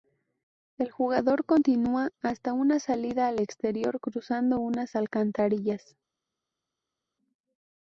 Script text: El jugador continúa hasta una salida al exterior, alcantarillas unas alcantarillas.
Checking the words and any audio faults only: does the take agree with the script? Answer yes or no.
no